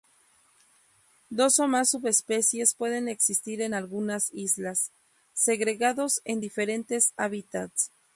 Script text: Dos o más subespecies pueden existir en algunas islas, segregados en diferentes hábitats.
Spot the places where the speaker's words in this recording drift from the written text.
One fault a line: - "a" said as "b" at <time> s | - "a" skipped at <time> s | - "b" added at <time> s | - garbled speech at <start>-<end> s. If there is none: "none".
none